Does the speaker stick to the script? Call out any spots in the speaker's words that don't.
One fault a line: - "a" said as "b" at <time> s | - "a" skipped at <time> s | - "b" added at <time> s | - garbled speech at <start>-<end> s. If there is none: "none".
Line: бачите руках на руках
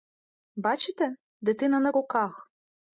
- "руках" said as "дитина" at 1.4 s